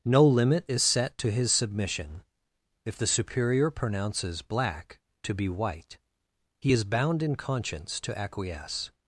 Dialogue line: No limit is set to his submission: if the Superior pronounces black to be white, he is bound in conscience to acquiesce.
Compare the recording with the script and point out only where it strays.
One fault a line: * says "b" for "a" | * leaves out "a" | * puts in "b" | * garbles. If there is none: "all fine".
all fine